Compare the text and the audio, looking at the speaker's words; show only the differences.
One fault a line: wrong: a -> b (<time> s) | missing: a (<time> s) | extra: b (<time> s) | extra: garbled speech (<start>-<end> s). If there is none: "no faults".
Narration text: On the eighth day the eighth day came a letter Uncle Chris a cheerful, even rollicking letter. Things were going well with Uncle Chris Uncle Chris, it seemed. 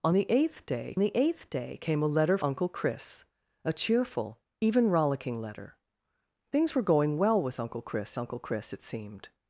no faults